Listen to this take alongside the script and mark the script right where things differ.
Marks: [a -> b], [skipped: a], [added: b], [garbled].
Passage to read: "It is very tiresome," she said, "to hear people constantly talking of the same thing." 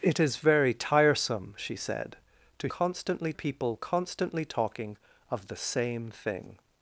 "It is very tiresome," she said, "to [hear -> constantly] people constantly talking of the same thing."